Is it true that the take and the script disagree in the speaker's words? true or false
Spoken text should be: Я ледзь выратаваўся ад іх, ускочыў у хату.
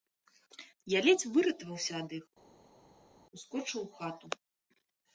false